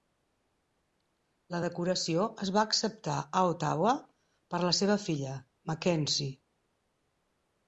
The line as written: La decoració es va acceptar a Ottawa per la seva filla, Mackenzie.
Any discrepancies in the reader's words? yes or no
no